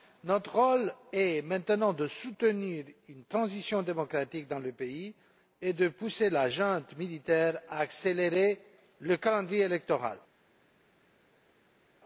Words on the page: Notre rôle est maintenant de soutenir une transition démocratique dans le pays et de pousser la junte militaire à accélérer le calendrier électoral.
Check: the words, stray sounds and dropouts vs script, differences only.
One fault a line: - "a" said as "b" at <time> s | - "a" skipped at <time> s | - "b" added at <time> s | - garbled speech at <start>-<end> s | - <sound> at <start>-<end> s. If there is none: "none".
none